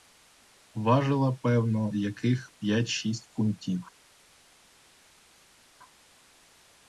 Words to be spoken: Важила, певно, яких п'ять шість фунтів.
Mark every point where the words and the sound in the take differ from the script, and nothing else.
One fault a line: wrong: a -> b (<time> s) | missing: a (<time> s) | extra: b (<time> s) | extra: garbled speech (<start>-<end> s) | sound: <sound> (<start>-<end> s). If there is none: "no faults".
no faults